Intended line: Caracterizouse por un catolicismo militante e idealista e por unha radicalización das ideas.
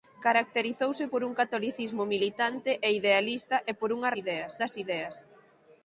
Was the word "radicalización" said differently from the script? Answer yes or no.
yes